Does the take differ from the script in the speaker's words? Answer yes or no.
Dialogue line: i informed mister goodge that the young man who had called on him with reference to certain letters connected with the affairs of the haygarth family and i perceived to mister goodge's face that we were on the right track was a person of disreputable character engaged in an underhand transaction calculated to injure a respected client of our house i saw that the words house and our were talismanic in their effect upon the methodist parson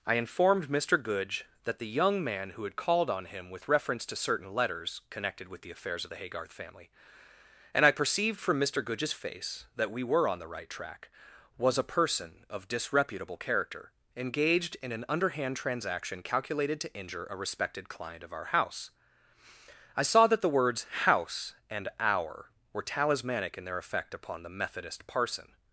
yes